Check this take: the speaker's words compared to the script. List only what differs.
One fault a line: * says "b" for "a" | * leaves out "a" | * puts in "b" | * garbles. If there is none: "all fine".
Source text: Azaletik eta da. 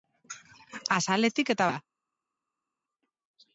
all fine